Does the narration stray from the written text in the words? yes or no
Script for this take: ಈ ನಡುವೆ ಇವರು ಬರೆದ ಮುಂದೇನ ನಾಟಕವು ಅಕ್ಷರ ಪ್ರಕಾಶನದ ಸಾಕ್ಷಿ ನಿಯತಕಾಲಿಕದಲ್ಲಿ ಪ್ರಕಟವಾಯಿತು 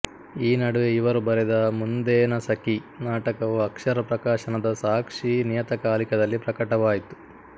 yes